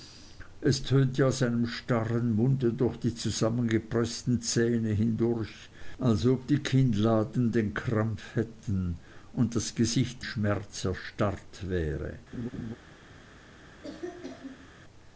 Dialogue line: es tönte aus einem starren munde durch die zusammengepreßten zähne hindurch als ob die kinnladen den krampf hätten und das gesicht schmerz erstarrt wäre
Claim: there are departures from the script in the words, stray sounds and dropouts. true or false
true